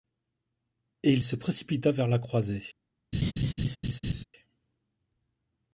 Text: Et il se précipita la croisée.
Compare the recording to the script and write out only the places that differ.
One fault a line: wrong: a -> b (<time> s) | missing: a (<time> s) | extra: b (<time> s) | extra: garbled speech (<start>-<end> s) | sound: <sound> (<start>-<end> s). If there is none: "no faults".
extra: vers (1.9 s)
sound: laugh (3.1-4.2 s)